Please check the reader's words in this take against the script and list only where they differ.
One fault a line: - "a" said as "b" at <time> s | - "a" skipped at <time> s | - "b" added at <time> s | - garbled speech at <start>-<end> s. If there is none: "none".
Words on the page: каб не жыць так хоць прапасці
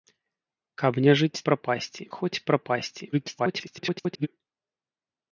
- "так" said as "прапасці" at 1.5 s
- garbled speech at 3.1-4.3 s